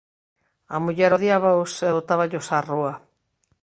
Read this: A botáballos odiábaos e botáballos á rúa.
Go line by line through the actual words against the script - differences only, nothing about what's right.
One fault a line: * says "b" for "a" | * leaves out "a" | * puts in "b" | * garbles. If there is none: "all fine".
* says "muller" for "botáballos"